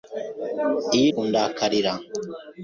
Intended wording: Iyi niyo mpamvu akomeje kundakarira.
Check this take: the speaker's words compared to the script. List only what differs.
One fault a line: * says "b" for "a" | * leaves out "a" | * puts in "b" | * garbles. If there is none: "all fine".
* leaves out "niyo mpamvu akomeje"